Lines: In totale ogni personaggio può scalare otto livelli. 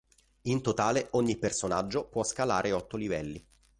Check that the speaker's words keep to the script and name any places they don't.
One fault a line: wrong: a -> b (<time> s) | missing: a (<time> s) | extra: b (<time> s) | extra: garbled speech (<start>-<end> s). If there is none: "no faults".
no faults